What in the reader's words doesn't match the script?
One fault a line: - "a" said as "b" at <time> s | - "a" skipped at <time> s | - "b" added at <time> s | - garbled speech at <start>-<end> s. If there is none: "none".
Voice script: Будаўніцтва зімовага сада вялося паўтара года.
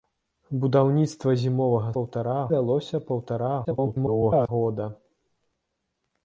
- "сада" said as "паўтара" at 2.0 s
- garbled speech at 3.6-4.5 s